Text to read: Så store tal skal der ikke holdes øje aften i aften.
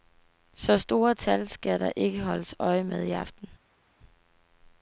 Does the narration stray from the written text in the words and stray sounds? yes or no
yes